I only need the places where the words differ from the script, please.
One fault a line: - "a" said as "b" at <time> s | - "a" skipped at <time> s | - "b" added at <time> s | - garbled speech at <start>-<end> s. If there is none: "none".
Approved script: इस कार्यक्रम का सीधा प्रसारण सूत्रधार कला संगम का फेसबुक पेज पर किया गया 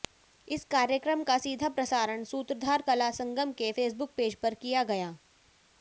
- "का" said as "के" at 3.5 s